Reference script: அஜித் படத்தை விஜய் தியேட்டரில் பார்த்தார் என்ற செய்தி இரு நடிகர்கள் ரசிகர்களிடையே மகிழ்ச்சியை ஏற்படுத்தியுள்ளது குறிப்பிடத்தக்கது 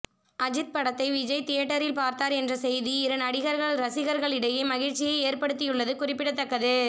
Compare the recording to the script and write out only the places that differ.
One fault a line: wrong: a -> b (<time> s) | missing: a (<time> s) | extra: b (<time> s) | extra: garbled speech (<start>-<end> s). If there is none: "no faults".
no faults